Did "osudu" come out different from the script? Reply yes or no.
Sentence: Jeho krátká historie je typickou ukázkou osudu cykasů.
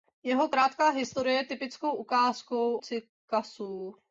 yes